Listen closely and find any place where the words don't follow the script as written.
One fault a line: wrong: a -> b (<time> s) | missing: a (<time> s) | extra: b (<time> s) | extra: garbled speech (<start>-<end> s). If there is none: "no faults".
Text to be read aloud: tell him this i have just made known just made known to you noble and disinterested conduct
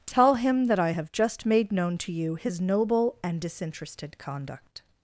wrong: this -> that (0.7 s)
missing: just made known (2.0 s)
extra: his (2.4 s)